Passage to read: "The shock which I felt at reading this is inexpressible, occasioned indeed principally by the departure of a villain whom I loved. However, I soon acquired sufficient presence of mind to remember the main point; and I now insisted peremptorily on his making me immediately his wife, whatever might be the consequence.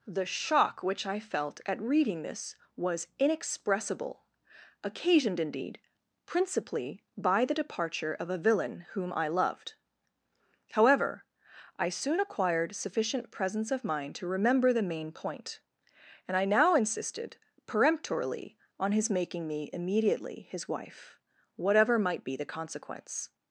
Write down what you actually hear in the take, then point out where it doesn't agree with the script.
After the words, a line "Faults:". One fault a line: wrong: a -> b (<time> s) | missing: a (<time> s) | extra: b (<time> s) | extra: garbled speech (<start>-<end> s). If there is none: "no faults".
"The shock which I felt at reading this was inexpressible, occasioned indeed principally by the departure of a villain whom I loved. However, I soon acquired sufficient presence of mind to remember the main point; and I now insisted peremptorily on his making me immediately his wife, whatever might be the consequence.
Faults:
wrong: is -> was (2.8 s)